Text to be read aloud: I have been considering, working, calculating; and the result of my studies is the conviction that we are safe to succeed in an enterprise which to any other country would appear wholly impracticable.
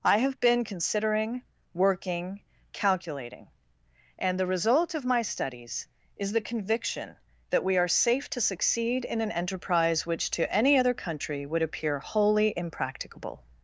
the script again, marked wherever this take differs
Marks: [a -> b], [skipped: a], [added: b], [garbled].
I have been considering, working, calculating; and the result of my studies is the conviction that we are safe to succeed in an enterprise which to any other country would appear wholly impracticable.